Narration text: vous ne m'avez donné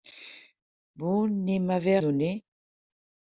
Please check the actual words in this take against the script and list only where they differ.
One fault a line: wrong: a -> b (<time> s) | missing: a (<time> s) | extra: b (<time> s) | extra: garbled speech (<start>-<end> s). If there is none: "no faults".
no faults